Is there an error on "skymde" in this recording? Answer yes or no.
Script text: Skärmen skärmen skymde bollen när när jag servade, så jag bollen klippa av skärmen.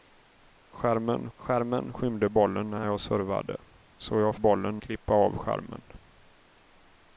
no